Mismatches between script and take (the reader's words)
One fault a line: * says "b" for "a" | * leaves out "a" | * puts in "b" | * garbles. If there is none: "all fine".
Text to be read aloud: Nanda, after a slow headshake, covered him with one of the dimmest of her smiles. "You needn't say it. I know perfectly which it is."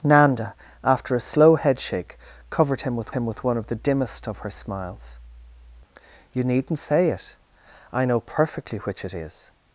* puts in "him with"